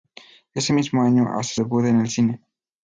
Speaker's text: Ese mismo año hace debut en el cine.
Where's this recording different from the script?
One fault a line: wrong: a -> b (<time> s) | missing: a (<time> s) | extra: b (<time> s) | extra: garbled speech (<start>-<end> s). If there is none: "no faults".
no faults